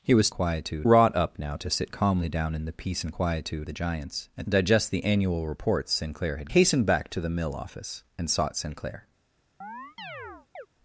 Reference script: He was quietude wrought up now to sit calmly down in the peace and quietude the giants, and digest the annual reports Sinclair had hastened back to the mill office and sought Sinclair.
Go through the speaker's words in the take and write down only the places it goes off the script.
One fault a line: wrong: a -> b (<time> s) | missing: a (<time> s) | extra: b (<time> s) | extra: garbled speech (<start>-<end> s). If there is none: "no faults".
no faults